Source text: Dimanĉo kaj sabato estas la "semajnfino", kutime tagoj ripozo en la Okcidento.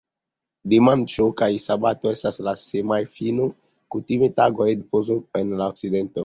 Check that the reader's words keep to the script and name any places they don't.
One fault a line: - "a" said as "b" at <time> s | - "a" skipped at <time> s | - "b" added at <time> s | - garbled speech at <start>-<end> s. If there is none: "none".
none